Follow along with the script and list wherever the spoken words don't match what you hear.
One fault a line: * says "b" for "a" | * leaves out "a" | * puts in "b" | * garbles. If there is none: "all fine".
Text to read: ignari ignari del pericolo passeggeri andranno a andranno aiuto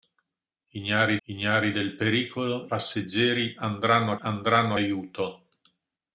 all fine